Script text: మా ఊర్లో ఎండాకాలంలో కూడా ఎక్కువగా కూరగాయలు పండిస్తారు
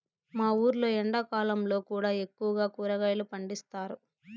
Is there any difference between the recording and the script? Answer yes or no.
no